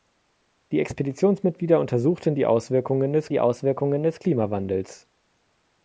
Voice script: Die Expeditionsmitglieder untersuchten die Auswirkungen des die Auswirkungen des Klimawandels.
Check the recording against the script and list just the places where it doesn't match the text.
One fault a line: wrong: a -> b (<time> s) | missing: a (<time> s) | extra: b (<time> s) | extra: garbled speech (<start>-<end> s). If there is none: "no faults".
no faults